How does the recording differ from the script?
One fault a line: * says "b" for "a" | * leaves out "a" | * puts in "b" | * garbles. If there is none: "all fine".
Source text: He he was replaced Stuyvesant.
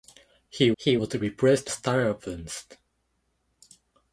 all fine